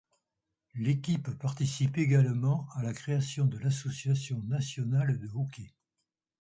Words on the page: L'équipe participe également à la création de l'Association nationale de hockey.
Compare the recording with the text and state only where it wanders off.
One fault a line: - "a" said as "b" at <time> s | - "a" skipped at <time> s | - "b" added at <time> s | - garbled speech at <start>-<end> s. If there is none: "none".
none